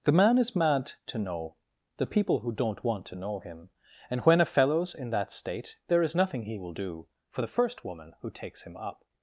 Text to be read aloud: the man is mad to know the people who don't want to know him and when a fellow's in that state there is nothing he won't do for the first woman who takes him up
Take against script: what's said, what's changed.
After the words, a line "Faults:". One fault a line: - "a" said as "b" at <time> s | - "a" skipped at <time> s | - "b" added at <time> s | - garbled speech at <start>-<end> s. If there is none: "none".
the man is mad to know the people who don't want to know him and when a fellow's in that state there is nothing he will do for the first woman who takes him up
Faults:
- "won't" said as "will" at 6.6 s